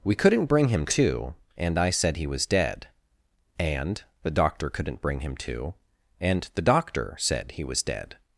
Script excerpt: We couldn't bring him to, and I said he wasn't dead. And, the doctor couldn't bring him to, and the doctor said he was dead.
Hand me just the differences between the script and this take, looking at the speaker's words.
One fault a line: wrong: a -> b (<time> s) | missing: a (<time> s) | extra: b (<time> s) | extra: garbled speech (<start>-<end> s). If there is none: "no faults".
wrong: wasn't -> was (2.3 s)